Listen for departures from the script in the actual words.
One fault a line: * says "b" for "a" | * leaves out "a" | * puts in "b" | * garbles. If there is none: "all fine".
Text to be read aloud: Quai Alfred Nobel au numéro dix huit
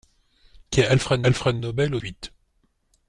* puts in "Alfred"
* leaves out "numéro dix"